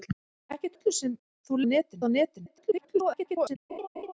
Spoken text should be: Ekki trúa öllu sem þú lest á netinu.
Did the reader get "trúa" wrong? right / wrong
wrong